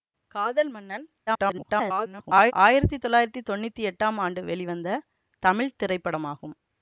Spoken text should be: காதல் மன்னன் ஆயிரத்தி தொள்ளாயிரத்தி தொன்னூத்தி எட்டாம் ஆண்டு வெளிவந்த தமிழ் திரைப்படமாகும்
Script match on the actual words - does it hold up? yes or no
no